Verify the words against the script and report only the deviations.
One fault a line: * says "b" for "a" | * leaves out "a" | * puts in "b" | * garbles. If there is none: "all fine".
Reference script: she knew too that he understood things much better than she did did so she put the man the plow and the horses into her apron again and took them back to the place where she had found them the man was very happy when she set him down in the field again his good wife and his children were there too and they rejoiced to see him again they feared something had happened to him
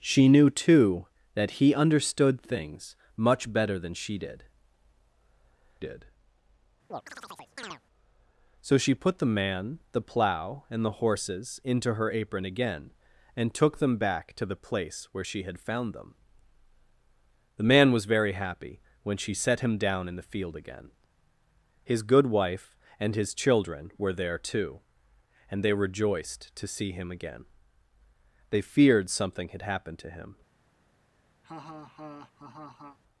all fine